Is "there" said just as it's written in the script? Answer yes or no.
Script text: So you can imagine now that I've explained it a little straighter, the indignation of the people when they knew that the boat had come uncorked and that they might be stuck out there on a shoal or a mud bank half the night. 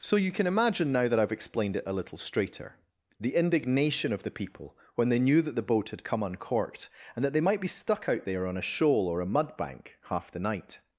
yes